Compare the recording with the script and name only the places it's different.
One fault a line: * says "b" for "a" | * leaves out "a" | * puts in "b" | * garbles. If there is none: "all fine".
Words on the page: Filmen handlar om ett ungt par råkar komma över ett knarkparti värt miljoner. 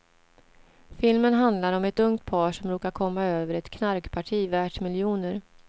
* puts in "som"